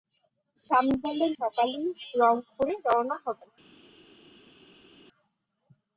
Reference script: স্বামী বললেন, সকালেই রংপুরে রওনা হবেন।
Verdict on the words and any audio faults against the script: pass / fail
pass